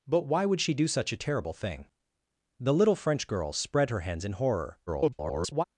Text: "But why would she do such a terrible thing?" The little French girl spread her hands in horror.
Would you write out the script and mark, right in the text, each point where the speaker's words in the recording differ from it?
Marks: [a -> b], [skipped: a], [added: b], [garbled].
"But why would she do such a terrible thing?" The little French girl spread her hands in horror. [garbled]